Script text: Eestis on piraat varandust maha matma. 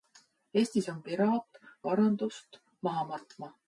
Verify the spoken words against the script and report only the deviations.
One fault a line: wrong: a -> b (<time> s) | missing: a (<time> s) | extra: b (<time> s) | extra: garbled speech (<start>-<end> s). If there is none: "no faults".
no faults